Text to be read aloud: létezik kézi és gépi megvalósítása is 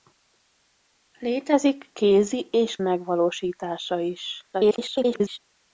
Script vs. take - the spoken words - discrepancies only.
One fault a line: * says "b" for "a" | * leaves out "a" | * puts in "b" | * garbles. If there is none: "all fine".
* leaves out "gépi"
* garbles